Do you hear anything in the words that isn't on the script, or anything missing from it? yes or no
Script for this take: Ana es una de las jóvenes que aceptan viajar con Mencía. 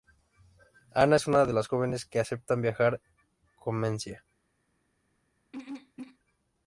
no